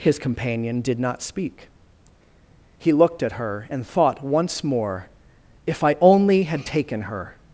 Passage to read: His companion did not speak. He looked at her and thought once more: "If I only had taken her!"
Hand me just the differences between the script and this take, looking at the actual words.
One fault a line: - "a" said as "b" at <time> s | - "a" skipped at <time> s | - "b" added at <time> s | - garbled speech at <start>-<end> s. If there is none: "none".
none